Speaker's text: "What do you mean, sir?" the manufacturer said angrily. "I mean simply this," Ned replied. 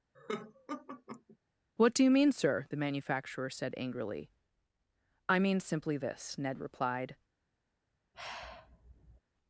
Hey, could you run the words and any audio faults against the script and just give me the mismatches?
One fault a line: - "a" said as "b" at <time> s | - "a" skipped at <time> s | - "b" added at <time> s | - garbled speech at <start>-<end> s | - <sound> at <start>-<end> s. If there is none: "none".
- laugh at 0.1-1.4 s
- sigh at 8.1-9.2 s